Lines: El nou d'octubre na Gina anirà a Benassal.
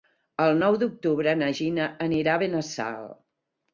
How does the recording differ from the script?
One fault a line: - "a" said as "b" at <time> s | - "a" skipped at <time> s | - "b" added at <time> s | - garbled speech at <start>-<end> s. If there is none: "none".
none